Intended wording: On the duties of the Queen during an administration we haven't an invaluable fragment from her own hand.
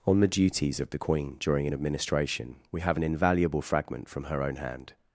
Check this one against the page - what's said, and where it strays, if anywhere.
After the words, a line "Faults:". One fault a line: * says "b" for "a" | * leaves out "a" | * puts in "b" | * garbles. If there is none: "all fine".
On the duties of the Queen during an administration we have an invaluable fragment from her own hand.
Faults:
* says "have" for "haven't"